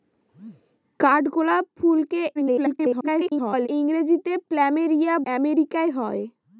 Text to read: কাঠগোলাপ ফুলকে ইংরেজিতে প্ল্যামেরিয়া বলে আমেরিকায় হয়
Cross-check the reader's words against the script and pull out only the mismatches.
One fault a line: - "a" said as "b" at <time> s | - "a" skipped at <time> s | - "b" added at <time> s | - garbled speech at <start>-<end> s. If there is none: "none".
- garbled speech at 2.4-3.7 s
- "বলে" skipped at 5.1 s